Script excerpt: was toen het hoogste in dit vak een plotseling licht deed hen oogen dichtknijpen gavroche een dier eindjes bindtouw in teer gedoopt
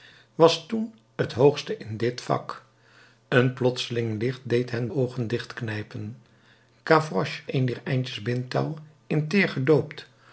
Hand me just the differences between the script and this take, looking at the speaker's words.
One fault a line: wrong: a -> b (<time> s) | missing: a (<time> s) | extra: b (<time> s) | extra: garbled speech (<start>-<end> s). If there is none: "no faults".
no faults